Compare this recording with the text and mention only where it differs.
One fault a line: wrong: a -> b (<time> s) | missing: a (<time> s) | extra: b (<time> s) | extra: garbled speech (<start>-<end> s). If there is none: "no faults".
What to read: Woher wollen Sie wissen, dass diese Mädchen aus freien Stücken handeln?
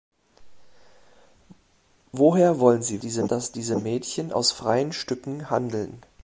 wrong: wissen -> diese (3.0 s)